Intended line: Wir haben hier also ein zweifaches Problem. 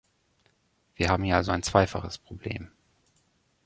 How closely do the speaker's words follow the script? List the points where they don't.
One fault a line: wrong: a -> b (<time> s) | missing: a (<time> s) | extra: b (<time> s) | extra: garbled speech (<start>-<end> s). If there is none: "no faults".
no faults